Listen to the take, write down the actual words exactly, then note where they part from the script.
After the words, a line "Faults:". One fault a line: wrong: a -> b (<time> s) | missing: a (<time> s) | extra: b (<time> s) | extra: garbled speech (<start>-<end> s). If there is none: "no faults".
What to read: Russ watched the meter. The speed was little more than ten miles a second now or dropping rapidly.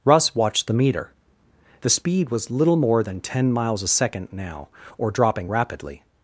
Russ watched the meter. The speed was little more than ten miles a second now or dropping rapidly.
Faults:
no faults